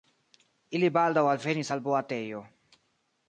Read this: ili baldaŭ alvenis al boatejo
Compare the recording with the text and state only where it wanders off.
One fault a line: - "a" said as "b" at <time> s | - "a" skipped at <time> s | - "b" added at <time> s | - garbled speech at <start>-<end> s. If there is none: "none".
none